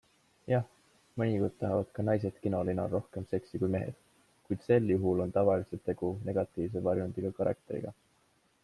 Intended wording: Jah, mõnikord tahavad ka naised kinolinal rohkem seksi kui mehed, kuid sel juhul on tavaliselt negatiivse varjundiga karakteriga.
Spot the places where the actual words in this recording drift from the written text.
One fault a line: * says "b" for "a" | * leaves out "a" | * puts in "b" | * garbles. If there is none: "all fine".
* puts in "tegu"